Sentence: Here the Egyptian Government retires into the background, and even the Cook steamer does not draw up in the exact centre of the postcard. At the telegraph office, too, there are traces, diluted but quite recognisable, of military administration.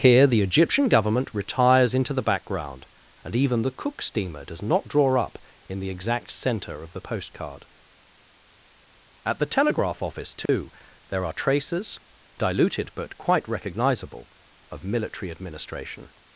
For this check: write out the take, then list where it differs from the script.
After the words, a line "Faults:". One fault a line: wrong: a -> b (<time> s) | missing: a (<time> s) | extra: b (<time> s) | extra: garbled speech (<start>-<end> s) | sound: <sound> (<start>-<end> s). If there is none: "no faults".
Here the Egyptian Government retires into the background, and even the Cook steamer does not draw up in the exact centre of the postcard. At the telegraph office, too, there are traces, diluted but quite recognisable, of military administration.
Faults:
sound: dropout (10.5-10.5 s)